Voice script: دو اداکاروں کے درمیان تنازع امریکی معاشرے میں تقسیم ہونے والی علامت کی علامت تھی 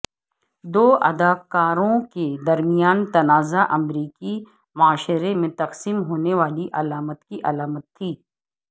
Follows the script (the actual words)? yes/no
yes